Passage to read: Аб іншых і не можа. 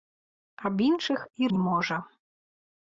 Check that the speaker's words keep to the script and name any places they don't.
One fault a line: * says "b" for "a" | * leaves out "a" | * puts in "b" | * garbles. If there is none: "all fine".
all fine